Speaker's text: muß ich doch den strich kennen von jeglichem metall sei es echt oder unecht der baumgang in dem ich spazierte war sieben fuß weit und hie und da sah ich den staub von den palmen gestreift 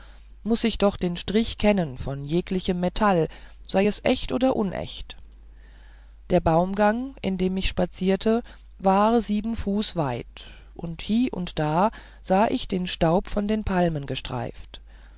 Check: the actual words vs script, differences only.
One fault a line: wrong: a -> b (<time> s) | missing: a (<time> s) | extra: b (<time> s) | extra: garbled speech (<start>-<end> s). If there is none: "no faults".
no faults